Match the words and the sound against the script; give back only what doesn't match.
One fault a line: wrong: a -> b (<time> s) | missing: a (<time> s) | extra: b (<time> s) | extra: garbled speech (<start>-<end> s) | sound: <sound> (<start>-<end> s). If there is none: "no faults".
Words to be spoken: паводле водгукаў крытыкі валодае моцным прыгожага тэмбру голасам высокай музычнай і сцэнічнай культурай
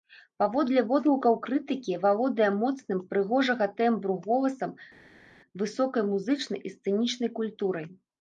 no faults